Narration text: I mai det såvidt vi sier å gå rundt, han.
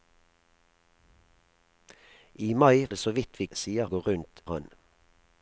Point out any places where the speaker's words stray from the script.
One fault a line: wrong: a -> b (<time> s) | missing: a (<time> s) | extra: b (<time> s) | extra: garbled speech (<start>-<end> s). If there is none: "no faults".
no faults